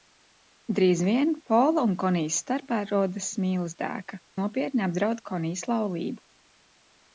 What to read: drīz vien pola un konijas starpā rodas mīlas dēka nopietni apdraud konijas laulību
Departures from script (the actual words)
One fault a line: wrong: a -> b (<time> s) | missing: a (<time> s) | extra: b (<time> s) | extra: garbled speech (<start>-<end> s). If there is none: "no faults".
no faults